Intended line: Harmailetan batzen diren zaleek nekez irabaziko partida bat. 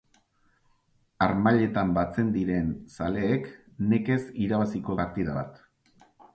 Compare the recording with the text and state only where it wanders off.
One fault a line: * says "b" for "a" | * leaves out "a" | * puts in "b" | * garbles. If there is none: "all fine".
all fine